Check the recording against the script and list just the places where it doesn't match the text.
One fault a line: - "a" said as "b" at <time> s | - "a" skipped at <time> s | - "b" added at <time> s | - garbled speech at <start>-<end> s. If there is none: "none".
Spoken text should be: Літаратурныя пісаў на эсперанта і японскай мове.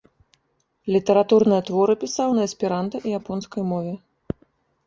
- "творы" added at 1.7 s